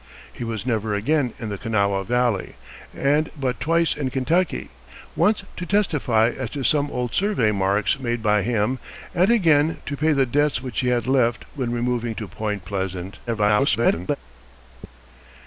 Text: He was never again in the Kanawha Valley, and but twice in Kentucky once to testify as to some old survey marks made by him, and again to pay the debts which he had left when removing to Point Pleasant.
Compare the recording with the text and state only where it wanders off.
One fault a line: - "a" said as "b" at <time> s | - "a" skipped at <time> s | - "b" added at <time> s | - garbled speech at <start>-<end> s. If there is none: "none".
- garbled speech at 13.3-14.2 s